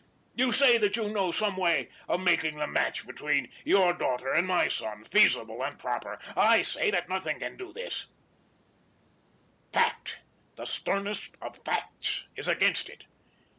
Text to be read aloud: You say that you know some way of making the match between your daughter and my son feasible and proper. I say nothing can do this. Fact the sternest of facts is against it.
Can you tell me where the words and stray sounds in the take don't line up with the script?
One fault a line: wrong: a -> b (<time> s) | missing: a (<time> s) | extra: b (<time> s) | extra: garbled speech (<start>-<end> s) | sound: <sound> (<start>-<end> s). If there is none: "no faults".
extra: that (6.9 s)